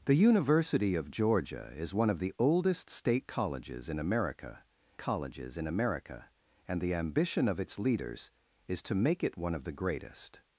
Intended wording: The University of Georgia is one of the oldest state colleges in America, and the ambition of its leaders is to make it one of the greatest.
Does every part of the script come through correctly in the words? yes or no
no